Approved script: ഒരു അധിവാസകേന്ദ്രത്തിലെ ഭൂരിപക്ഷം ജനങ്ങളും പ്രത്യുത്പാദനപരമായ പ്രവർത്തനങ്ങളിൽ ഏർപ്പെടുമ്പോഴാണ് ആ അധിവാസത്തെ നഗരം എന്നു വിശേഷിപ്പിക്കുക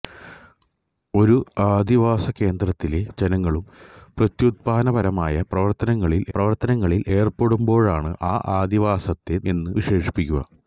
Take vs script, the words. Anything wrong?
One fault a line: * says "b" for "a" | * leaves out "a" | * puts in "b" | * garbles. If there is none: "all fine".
* leaves out "ഭൂരിപക്ഷം"
* puts in "പ്രവർത്തനങ്ങളിൽ"
* leaves out "നഗരം"